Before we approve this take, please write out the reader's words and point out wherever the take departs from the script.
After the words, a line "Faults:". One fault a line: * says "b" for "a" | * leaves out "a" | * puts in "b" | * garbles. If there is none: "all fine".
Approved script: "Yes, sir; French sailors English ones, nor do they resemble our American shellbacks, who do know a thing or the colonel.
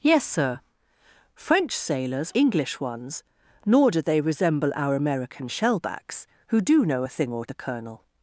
"Yes, sir; French sailors English ones, nor do they resemble our American shellbacks, who do know a thing or the colonel.
Faults:
all fine